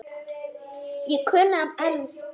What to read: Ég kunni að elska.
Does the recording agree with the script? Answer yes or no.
yes